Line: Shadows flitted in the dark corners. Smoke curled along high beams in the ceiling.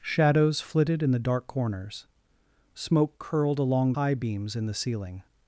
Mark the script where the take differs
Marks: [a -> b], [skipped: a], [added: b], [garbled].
Shadows flitted in the dark corners. Smoke curled along high beams in the ceiling.